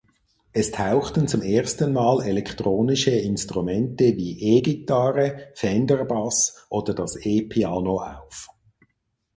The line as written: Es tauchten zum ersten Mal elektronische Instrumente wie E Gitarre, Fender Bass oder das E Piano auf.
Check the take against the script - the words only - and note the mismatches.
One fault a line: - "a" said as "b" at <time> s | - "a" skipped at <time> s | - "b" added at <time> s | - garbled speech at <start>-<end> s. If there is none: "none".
none